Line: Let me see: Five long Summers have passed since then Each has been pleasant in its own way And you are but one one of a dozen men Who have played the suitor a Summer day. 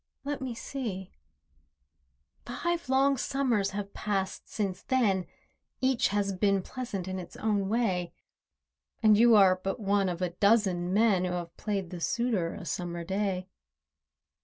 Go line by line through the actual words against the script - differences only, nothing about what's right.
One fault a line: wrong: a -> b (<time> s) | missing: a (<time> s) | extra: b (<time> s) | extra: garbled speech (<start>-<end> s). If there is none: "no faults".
missing: one (10.1 s)